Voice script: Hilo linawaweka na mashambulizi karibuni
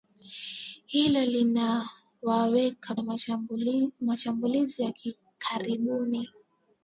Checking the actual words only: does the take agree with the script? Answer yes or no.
yes